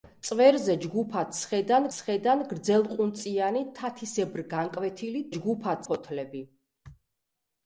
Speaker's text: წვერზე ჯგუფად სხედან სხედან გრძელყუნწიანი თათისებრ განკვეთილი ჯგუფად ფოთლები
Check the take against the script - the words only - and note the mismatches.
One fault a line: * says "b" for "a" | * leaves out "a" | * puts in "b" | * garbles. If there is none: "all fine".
all fine